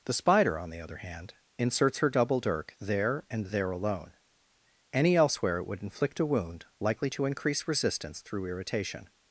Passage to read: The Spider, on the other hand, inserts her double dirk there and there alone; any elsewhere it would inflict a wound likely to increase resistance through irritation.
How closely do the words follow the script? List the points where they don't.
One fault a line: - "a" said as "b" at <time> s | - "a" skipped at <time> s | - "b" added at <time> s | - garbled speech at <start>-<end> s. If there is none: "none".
none